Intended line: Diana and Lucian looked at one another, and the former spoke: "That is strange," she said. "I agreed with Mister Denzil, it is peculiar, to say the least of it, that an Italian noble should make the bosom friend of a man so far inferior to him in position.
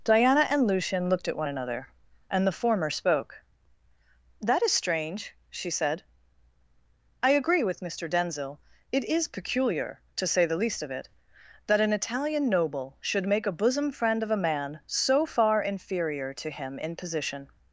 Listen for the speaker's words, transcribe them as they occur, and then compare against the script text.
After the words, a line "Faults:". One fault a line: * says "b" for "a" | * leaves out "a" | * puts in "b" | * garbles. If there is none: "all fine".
Diana and Lucian looked at one another, and the former spoke: "That is strange," she said. "I agree with Mister Denzil, it is peculiar, to say the least of it, that an Italian noble should make a bosom friend of a man so far inferior to him in position.
Faults:
* says "agree" for "agreed"
* says "a" for "the"